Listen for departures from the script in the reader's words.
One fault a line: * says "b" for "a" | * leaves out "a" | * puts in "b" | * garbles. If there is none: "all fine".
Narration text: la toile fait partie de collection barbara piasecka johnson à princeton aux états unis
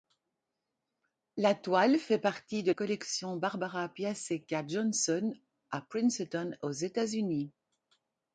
all fine